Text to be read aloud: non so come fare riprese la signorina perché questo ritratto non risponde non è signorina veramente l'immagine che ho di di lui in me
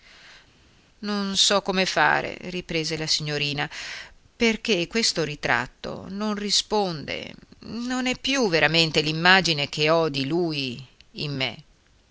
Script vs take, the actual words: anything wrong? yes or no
yes